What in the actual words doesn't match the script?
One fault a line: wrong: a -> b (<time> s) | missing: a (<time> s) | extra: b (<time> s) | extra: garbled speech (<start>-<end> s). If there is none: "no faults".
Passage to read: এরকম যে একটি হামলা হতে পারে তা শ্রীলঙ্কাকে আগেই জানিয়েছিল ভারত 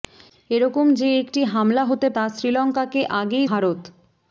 missing: পারে (2.1 s)
missing: জানিয়েছিল (3.5 s)